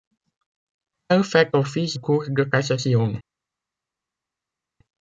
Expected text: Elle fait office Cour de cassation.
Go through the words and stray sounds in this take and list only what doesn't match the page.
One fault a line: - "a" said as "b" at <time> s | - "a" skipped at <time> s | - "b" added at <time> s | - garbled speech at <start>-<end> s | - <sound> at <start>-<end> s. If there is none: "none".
none